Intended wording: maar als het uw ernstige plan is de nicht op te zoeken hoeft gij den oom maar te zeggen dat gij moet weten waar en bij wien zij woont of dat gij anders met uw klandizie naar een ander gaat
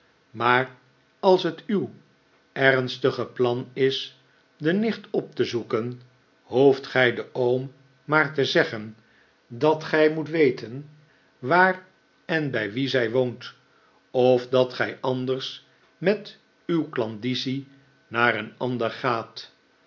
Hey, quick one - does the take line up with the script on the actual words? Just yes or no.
yes